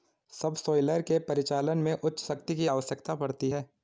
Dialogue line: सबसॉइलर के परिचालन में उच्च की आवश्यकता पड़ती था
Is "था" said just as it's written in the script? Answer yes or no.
no